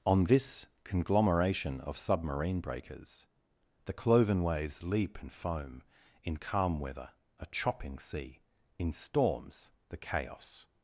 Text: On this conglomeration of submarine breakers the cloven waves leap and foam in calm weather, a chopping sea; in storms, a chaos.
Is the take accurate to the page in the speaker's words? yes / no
no